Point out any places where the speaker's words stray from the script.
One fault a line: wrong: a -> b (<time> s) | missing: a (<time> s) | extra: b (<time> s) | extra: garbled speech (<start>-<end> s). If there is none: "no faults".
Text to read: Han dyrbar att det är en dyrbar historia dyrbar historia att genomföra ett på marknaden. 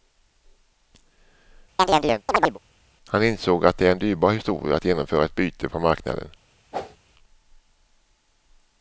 wrong: dyrbar -> insåg (3.2 s)
missing: dyrbar historia (4.8 s)
extra: byte (5.3 s)